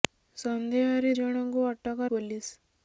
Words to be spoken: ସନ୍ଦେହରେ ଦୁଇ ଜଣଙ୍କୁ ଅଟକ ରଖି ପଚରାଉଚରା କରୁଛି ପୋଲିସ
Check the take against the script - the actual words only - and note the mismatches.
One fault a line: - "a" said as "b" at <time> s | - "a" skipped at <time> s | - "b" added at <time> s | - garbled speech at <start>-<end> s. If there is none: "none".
- "ଦୁଇ" skipped at 1.1 s
- "ରଖି ପଚରାଉଚରା କରୁଛି" skipped at 2.1 s